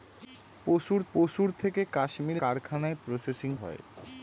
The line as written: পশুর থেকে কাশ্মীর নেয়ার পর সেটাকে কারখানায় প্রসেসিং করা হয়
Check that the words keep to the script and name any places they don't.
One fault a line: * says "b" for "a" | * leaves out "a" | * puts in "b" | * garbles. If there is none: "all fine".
* puts in "পশুর"
* leaves out "নেয়ার পর সেটাকে"
* leaves out "করা"